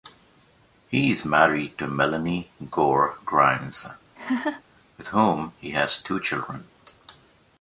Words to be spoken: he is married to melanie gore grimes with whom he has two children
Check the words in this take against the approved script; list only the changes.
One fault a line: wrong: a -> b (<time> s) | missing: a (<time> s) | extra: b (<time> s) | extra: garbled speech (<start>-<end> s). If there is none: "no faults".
no faults